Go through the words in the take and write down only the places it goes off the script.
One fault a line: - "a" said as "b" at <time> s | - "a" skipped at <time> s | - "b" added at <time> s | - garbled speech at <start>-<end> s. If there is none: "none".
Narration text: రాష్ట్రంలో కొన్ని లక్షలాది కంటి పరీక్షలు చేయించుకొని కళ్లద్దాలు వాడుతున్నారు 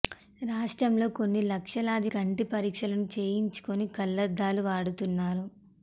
none